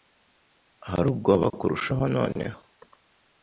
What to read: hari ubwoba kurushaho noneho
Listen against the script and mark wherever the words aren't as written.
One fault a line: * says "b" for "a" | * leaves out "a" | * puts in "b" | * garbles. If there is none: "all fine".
all fine